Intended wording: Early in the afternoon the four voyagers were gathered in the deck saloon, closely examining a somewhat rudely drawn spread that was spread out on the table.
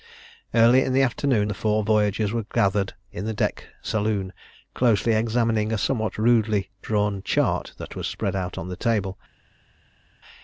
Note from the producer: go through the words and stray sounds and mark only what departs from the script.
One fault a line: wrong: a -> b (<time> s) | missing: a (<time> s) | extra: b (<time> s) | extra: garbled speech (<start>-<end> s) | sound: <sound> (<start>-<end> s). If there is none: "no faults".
wrong: spread -> chart (7.2 s)